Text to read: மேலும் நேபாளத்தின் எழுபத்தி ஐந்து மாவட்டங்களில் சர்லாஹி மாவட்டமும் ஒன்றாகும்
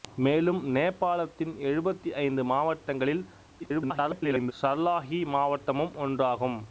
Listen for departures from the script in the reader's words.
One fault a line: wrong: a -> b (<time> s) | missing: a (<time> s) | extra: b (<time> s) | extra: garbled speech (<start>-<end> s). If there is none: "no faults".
extra: garbled speech (3.6-4.5 s)